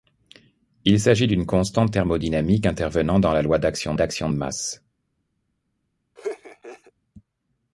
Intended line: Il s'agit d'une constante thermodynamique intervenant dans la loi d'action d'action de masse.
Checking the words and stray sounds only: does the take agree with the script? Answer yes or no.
no